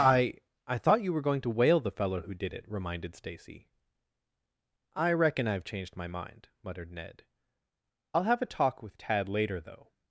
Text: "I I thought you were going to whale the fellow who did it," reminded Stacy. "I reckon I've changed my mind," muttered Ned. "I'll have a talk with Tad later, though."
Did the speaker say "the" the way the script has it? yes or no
yes